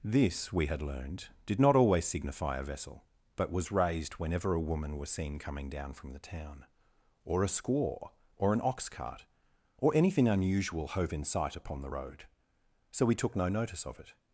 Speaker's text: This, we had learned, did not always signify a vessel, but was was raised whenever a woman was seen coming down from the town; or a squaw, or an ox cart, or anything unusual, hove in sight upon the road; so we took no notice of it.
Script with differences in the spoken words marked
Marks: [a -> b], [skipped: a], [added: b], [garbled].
This, we had learned, did not always signify a vessel, but was [skipped: was] raised whenever a woman was seen coming down from the town; or a squaw, or an ox cart, or anything unusual, hove in sight upon the road; so we took no notice of it.